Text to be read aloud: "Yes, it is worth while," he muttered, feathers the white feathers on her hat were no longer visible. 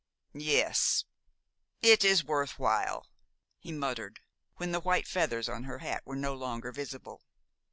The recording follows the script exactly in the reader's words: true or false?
false